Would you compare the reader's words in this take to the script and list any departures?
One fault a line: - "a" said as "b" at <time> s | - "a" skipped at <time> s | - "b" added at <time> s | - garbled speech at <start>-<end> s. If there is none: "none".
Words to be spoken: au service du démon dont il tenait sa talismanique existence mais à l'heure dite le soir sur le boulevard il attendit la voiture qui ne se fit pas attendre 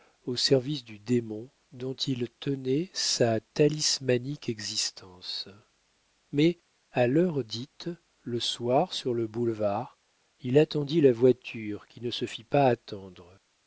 none